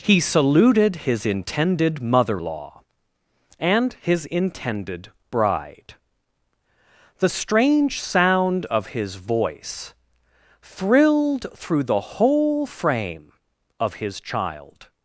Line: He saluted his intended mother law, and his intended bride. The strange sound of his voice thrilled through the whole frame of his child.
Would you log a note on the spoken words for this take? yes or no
no